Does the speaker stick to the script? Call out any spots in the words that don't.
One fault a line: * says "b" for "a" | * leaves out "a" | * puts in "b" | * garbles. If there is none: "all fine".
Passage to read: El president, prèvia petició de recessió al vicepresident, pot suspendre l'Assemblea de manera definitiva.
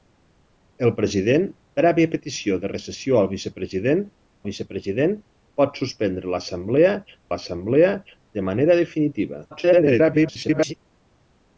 * puts in "vicepresident"
* puts in "l'Assemblea"
* garbles